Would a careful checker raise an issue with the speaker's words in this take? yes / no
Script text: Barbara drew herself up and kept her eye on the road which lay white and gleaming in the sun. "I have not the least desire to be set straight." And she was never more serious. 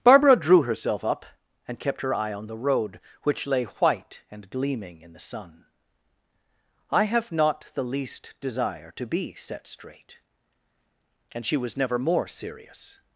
no